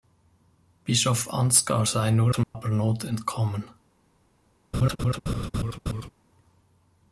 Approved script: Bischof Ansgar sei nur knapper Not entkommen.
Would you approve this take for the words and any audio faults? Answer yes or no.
no